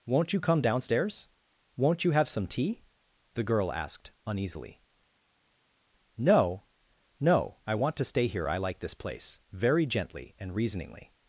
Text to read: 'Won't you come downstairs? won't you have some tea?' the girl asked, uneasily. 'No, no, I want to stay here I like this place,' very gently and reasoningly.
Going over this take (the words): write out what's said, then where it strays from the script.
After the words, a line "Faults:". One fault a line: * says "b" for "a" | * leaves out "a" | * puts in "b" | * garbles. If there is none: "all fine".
'Won't you come downstairs? won't you have some tea?' the girl asked, uneasily. 'No, no, I want to stay here I like this place,' very gently and reasoningly.
Faults:
all fine